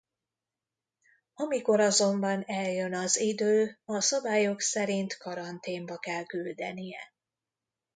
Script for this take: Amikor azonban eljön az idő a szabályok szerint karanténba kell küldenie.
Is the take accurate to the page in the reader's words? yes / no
yes